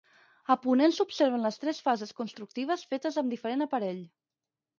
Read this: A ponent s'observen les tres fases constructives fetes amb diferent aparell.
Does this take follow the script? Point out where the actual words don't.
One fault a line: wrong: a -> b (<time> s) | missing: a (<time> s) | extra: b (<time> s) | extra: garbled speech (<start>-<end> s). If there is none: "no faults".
no faults